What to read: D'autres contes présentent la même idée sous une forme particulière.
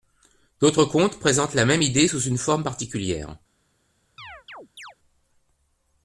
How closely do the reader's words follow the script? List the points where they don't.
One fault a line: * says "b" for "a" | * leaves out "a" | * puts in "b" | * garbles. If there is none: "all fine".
all fine